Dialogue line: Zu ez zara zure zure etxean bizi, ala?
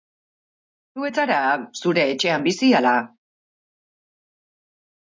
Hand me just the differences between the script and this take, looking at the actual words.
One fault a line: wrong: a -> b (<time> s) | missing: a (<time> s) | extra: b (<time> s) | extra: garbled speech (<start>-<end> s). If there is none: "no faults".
missing: zure (2.1 s)